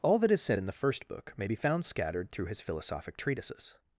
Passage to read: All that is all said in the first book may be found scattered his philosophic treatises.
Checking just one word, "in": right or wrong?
right